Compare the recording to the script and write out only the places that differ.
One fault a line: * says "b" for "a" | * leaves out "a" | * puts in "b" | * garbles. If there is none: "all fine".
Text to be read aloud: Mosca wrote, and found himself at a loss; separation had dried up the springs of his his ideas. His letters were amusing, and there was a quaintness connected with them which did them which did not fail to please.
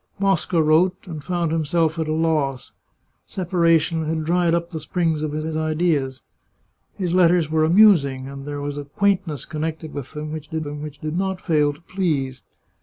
all fine